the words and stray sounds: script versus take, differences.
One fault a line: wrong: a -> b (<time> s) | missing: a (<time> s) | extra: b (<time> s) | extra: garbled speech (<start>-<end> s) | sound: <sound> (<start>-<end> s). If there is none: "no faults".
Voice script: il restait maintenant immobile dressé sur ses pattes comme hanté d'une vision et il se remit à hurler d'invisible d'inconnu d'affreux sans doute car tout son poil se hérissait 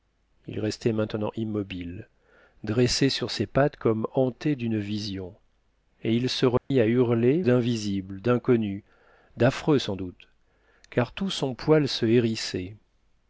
sound: dropout (6.6-6.7 s)